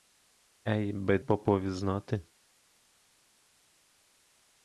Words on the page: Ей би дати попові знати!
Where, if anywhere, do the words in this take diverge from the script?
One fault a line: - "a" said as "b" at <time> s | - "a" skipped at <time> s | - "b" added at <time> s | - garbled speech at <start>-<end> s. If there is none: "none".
- "дати" skipped at 1.2 s